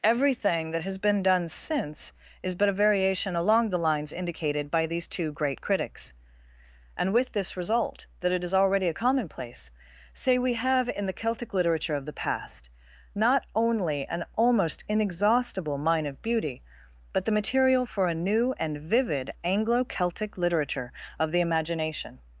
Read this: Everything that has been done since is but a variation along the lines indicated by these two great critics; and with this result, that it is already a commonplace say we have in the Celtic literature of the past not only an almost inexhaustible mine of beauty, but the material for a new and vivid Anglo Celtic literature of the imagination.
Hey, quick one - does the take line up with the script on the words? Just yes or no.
yes